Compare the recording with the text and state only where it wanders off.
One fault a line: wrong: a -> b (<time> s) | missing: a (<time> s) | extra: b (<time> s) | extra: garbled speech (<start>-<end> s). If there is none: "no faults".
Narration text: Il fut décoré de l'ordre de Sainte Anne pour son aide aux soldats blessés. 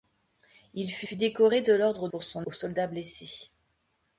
extra: fut (1.0 s)
missing: de Sainte Anne (2.1 s)
missing: aide (2.5 s)